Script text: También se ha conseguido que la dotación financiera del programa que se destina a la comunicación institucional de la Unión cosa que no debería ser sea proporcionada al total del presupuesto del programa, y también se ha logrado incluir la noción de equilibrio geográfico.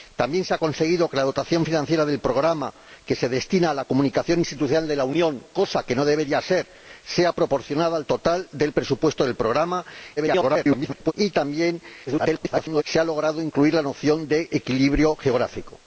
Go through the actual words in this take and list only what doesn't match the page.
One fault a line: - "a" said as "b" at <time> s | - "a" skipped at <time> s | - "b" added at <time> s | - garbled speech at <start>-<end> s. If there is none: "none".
- garbled speech at 10.2-11.1 s
- garbled speech at 12.1-12.8 s